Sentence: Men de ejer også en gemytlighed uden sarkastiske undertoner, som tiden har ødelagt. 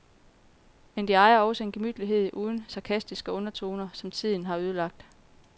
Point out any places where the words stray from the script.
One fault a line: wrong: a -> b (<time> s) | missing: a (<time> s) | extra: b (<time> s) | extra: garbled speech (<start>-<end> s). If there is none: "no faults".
no faults